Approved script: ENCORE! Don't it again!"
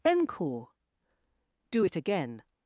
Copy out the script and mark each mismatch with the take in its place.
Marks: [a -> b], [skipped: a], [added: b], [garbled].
ENCORE! [Don't -> Do] it again!"